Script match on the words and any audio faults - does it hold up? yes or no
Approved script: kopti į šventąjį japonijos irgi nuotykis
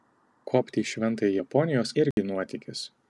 no